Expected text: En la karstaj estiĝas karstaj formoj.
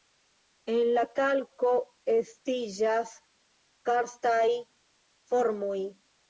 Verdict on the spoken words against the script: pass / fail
fail